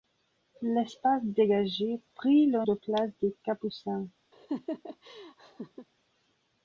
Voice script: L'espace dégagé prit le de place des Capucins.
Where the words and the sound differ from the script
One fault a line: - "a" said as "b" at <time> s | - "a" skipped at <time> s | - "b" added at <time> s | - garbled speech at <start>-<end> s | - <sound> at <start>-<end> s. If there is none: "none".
- laugh at 4.3-5.9 s